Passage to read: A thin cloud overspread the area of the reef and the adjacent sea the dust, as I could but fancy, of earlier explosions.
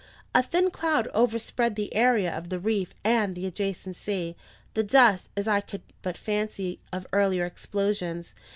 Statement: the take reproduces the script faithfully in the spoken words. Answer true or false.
true